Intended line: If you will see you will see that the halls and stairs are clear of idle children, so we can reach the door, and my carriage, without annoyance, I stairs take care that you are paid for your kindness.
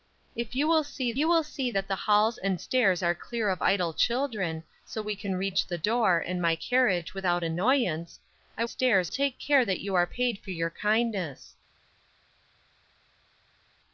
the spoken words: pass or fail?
pass